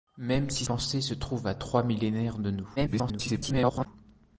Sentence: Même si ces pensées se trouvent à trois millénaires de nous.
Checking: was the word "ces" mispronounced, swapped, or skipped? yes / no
yes